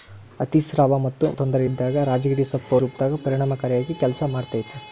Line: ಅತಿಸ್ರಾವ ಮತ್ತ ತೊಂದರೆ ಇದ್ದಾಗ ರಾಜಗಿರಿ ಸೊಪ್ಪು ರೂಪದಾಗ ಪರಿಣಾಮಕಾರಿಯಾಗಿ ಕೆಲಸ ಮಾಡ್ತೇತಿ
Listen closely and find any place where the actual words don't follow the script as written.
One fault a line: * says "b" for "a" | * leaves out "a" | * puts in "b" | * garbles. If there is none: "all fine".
all fine